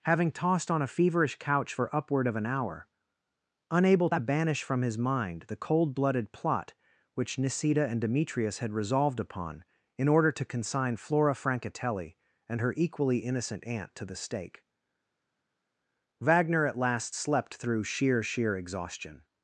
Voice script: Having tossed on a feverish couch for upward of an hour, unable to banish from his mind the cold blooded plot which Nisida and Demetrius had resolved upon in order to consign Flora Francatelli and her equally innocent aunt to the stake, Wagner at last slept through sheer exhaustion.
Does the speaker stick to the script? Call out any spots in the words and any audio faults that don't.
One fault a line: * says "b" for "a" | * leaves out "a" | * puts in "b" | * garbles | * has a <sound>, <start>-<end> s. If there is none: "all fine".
* puts in "sheer"